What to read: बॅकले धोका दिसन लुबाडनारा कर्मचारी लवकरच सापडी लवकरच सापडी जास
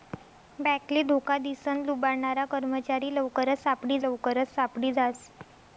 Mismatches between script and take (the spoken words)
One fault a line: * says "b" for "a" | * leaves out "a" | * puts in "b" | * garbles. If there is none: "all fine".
all fine